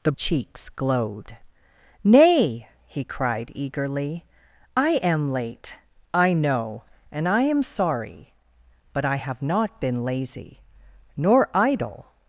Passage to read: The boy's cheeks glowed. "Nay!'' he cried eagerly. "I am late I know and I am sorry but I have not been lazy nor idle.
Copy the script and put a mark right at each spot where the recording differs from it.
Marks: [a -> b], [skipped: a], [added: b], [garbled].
The [skipped: boy's] cheeks glowed. "Nay!'' he cried eagerly. "I am late I know and I am sorry but I have not been lazy nor idle.